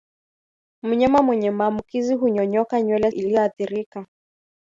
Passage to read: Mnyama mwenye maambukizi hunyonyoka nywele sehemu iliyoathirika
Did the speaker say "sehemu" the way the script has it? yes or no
no